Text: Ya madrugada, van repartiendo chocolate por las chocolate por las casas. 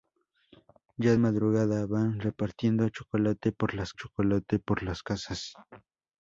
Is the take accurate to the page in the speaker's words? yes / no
yes